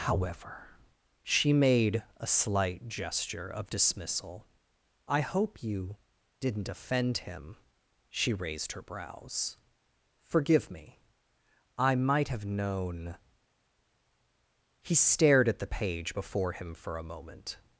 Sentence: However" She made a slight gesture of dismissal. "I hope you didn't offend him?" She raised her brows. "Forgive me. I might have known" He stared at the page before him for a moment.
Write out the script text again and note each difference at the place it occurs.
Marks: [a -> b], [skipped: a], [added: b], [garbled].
However" She made a slight gesture of dismissal. "I hope you didn't offend him?" She raised her brows. "Forgive me. I might have known" He stared at the page before him for a moment.